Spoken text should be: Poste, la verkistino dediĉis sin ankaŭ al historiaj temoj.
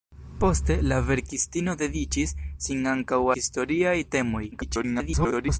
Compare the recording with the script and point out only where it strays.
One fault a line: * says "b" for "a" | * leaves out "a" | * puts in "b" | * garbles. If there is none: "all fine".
* leaves out "al"
* garbles